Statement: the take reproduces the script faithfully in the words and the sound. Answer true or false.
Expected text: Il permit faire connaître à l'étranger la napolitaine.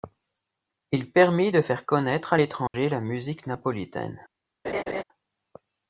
false